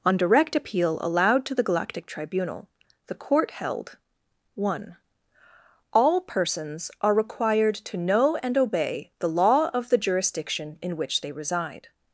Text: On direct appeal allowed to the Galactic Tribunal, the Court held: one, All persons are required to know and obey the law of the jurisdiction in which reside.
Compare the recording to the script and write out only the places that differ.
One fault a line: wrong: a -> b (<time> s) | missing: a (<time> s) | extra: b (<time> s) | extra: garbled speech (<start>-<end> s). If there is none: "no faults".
extra: they (11.2 s)